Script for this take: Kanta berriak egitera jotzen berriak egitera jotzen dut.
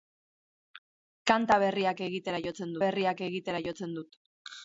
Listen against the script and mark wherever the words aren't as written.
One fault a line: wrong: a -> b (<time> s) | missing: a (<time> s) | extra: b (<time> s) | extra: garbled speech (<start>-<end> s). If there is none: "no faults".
no faults